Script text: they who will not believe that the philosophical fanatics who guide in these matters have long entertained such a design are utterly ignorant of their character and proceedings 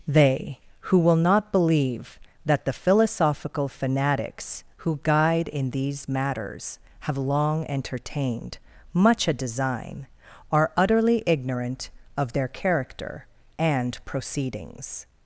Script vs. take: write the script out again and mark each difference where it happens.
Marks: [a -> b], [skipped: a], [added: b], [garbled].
they who will not believe that the philosophical fanatics who guide in these matters have long entertained [such -> much] a design are utterly ignorant of their character and proceedings